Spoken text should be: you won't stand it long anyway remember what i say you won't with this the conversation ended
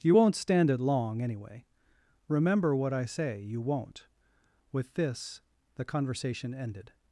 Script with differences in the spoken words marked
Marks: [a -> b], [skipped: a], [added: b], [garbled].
you won't stand it long anyway remember what i say you won't with this the conversation ended